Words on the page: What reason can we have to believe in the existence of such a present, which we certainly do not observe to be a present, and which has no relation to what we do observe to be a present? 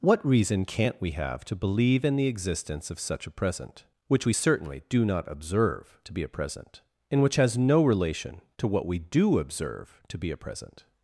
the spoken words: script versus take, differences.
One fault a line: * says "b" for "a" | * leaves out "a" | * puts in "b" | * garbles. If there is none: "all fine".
* says "can't" for "can"